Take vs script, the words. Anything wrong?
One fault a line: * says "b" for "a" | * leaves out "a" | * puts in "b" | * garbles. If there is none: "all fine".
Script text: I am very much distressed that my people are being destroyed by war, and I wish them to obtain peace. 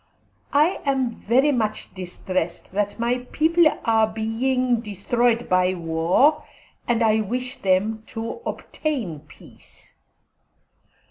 all fine